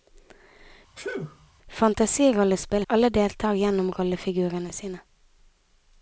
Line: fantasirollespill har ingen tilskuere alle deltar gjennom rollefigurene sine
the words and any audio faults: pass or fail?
fail